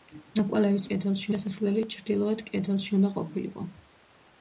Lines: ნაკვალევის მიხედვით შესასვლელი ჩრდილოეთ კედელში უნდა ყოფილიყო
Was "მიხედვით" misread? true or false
true